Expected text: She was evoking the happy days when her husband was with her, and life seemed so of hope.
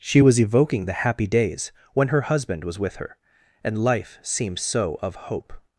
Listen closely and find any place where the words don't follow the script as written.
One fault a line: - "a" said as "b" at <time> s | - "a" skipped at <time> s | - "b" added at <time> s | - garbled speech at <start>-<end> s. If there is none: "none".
none